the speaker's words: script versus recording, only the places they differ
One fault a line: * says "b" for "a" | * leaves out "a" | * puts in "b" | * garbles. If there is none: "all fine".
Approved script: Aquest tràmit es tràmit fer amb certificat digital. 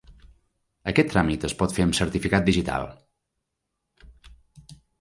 * says "pot" for "tràmit"